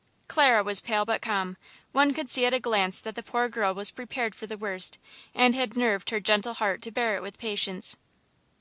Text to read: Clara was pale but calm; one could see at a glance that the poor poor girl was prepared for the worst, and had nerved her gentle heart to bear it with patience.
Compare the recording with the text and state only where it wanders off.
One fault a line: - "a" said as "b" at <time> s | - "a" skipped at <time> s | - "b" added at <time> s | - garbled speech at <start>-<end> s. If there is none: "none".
- "poor" skipped at 3.5 s